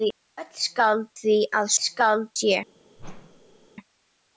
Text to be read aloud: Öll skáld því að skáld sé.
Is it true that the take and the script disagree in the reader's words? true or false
false